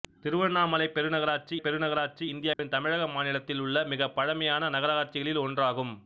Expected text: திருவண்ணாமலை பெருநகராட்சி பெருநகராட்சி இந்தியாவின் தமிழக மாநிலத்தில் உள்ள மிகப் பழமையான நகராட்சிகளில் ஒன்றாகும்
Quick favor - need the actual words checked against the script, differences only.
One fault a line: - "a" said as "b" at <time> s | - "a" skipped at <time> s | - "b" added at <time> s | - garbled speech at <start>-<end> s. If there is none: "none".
none